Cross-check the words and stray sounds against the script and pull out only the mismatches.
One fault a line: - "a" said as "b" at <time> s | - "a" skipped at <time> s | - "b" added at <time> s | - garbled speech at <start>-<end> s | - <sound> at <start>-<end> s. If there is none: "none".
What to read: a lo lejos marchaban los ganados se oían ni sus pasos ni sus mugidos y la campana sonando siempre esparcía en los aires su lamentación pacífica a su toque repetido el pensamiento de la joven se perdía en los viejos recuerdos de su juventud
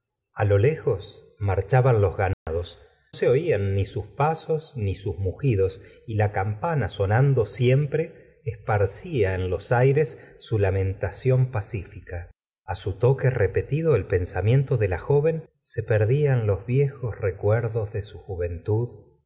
- dropout at 2.3-2.5 s